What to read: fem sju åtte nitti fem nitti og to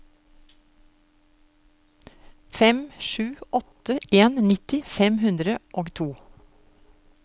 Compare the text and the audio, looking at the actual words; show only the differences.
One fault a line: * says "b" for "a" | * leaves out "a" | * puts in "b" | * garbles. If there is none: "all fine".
* puts in "en"
* says "hundre" for "nitti"